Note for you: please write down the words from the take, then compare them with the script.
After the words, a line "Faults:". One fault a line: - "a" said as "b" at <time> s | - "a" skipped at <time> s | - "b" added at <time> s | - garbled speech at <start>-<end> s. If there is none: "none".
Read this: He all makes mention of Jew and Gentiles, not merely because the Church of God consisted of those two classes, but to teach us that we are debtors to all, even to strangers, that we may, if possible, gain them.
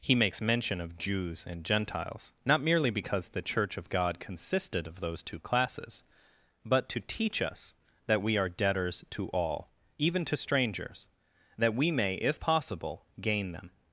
He makes mention of Jews and Gentiles, not merely because the Church of God consisted of those two classes, but to teach us that we are debtors to all, even to strangers, that we may, if possible, gain them.
Faults:
- "all" skipped at 0.1 s
- "Jew" said as "Jews" at 1.0 s